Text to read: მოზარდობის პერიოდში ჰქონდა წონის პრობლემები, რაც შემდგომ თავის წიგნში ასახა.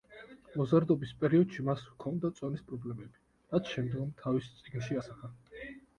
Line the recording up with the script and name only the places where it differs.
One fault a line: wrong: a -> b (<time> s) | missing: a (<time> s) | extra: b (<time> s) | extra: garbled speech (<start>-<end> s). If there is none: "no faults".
extra: მას (1.7 s)